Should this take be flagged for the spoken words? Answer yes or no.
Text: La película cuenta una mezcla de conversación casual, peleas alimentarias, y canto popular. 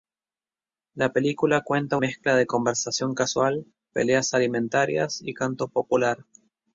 yes